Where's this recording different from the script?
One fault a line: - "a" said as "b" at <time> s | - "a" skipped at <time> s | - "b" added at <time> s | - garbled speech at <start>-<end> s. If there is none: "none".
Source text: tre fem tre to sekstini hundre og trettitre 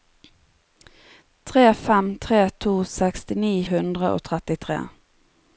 none